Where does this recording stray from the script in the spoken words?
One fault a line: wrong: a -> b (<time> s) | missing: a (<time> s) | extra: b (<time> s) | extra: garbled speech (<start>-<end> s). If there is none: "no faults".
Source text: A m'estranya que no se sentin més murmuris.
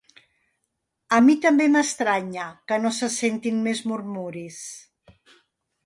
extra: mi també (1.2 s)